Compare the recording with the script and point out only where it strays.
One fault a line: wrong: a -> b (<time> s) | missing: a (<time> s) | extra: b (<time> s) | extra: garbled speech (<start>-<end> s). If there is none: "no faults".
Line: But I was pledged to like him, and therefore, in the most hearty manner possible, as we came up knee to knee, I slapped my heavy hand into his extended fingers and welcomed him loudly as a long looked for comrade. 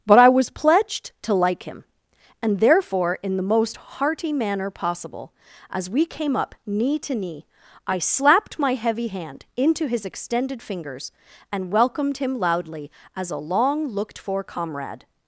no faults